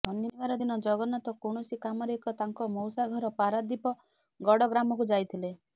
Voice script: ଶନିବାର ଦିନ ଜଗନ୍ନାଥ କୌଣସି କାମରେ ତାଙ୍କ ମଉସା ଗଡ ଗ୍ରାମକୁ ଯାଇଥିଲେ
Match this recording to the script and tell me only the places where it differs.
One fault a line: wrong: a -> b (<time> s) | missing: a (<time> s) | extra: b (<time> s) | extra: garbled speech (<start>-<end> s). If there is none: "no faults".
extra: ଏକ (2.2 s)
extra: ଘର ପାରାଦୀପ (3.1 s)